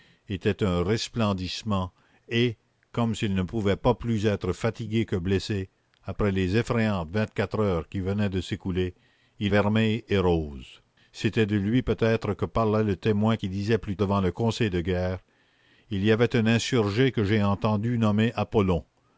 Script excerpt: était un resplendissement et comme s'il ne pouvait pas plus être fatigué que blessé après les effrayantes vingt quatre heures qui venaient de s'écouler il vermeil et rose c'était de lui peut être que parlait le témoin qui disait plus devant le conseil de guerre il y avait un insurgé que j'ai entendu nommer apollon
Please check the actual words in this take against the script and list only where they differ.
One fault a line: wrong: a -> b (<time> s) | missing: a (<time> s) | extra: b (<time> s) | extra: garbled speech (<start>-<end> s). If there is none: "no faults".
no faults